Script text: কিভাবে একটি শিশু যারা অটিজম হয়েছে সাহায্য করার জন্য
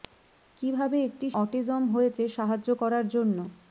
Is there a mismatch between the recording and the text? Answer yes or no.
yes